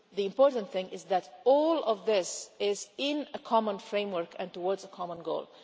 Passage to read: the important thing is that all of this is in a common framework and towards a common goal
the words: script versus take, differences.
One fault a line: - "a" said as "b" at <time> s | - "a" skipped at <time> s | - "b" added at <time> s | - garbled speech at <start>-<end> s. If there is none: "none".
none